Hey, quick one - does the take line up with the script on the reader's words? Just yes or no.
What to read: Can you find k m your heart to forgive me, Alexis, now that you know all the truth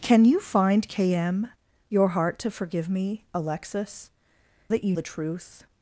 no